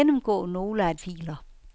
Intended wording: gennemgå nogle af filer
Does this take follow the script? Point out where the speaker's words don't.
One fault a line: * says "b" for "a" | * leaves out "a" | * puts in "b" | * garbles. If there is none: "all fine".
all fine